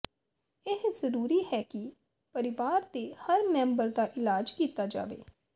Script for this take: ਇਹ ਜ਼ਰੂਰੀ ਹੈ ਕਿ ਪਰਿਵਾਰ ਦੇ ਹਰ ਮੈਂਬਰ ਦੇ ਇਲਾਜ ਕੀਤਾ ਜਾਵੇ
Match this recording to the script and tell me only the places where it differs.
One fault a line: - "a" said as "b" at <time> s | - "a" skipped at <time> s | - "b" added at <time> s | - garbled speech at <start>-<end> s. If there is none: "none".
- "ਦੇ" said as "ਦਾ" at 3.9 s